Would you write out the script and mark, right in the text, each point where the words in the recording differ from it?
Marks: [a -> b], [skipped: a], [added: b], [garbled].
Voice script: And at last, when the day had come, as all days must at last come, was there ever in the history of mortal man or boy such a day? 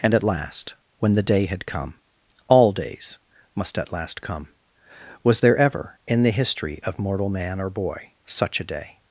And at last, when the day had come, [skipped: as] all days must at last come, was there ever in the history of mortal man or boy such a day?